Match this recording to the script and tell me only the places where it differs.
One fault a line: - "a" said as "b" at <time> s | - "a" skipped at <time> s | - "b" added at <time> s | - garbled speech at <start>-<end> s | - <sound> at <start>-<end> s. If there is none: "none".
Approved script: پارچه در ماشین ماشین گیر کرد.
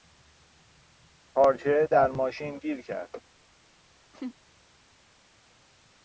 - "ماشین" skipped at 2.6 s
- laugh at 4.1-4.3 s